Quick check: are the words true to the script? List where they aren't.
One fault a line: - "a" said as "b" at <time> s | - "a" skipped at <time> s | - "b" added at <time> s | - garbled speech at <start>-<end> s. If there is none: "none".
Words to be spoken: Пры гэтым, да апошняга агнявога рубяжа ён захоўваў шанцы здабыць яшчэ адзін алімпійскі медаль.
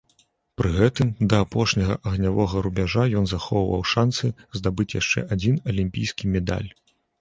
none